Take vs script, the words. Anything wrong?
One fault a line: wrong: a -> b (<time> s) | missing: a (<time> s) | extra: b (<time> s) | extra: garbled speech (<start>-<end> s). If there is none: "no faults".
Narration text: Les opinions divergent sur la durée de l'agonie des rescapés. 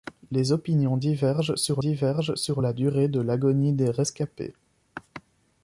extra: divergent sur (1.8 s)